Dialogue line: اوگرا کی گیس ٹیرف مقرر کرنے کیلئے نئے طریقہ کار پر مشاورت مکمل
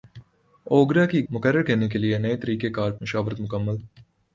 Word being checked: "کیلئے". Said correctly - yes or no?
yes